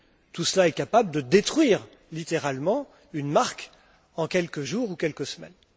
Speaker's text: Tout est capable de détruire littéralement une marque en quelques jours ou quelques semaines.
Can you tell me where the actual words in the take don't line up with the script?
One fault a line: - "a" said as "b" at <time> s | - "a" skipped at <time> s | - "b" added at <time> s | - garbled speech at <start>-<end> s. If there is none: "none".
- "cela" added at 0.5 s